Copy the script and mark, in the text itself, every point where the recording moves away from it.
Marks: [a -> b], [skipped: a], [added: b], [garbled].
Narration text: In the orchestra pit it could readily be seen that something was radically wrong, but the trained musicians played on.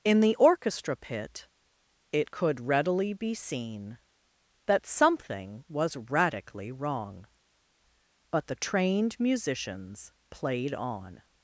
In the orchestra pit it could readily be seen that something was radically wrong, but the trained musicians played on.